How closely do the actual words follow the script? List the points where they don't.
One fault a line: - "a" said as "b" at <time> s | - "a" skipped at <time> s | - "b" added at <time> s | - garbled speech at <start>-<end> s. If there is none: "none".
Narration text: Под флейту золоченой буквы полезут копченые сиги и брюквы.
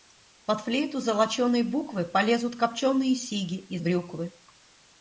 none